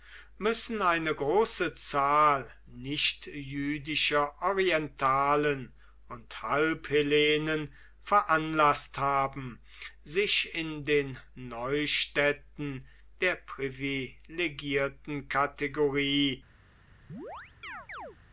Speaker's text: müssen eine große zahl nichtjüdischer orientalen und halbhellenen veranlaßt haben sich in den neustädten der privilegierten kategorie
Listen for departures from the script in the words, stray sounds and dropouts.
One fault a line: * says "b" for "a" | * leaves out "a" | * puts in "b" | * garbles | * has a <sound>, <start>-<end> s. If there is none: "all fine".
* has a chirp, 17.1-18.2 s